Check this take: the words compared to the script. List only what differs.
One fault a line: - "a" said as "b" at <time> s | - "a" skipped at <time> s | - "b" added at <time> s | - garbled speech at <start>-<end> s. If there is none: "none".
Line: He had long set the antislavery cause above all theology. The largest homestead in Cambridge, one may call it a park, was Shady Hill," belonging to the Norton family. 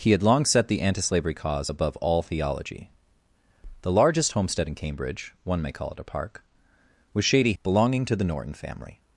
- "Hill" skipped at 7.5 s